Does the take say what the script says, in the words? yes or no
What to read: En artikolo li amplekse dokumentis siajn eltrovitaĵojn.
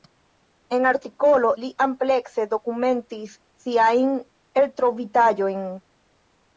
yes